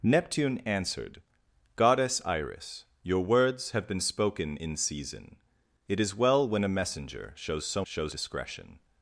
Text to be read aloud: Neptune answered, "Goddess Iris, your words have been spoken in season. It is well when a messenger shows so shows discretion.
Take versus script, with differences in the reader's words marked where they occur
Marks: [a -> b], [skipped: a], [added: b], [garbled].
Neptune answered, "Goddess Iris, your words have been spoken in season. It is well when a messenger shows so shows discretion.